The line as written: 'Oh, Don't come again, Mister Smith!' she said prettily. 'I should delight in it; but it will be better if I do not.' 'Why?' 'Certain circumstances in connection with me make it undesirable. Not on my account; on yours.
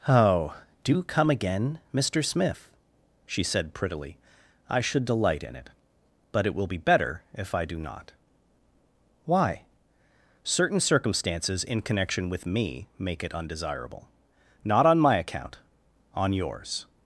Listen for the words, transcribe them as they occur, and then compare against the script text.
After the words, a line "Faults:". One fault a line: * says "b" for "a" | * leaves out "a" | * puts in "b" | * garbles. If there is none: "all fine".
'Oh, DO come again, Mister Smith!' she said prettily. 'I should delight in it; but it will be better if I do not.' 'Why?' 'Certain circumstances in connection with me make it undesirable. Not on my account; on yours.
Faults:
* says "DO" for "Don't"